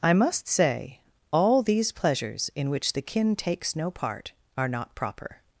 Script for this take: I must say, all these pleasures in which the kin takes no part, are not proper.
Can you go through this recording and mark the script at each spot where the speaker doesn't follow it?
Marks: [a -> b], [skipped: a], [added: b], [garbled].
I must say, all these pleasures in which the kin takes no part, are not proper.